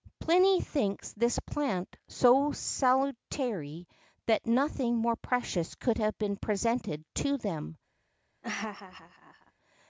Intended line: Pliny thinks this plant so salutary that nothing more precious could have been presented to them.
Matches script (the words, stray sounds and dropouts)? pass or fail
fail